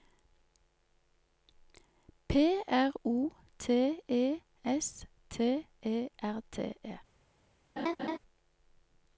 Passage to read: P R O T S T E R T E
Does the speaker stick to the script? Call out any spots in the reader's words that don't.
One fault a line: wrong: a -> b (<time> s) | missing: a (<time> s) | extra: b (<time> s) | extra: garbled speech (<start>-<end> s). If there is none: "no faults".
extra: E (4.1 s)